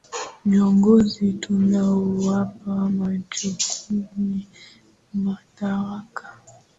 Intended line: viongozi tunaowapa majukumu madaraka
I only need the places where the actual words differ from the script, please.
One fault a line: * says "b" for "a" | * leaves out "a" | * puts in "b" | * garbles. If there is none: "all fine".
all fine